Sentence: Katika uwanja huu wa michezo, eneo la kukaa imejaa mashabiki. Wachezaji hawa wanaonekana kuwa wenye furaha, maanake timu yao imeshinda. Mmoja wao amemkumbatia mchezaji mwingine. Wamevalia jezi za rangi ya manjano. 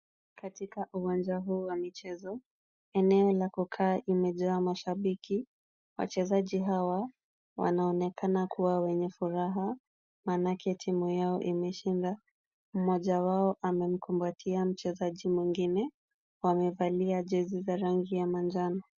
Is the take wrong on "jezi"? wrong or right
right